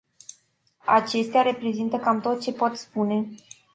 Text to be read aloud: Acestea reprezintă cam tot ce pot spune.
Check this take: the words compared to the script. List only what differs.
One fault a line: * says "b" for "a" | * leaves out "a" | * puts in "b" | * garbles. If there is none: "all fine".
all fine